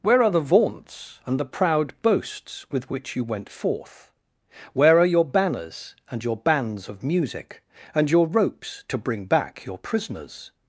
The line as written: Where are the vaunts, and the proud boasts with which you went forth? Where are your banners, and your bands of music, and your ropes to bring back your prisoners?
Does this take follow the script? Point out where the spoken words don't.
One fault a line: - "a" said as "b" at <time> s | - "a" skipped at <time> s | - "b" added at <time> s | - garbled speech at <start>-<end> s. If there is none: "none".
none